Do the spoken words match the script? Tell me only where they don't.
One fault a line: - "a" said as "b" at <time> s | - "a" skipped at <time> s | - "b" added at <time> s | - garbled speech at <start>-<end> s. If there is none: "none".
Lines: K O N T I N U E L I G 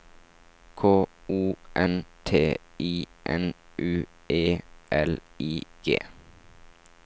none